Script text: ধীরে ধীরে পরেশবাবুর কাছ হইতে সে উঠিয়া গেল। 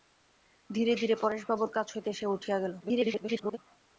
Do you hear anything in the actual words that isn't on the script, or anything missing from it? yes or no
yes